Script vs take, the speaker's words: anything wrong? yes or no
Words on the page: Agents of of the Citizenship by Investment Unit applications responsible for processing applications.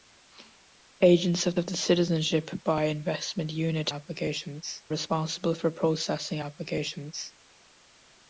no